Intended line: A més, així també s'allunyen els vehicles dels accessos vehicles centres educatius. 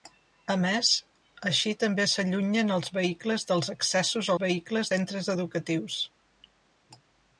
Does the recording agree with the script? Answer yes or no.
yes